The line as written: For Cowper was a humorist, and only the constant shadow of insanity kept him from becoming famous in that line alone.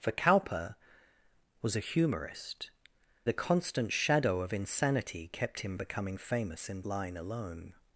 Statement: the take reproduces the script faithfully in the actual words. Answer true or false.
false